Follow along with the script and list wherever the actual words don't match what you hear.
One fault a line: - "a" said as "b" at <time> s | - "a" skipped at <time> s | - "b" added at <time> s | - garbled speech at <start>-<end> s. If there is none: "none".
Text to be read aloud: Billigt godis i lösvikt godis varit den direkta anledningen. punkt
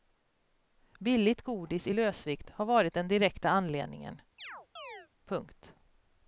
- "godis" said as "har" at 2.5 s